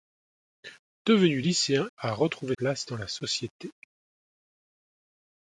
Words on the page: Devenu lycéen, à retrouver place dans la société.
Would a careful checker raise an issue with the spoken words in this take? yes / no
no